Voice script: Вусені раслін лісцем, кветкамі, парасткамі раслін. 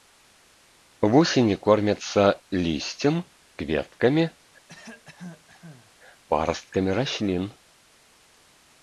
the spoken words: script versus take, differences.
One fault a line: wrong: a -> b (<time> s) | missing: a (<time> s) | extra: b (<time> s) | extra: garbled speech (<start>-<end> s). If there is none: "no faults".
wrong: раслін -> кормяцца (1.7 s)